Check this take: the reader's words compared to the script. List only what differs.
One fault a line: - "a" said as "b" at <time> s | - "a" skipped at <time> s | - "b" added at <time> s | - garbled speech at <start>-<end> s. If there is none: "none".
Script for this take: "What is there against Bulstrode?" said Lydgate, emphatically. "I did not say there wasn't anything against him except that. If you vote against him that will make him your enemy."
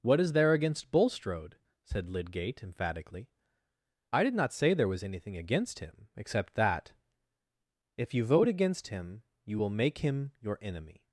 - "wasn't" said as "was" at 4.9 s
- "that" said as "you" at 9.4 s